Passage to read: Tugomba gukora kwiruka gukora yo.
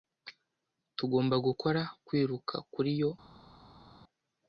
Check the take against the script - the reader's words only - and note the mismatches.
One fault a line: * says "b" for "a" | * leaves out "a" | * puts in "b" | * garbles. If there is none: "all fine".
* says "kuri" for "gukora"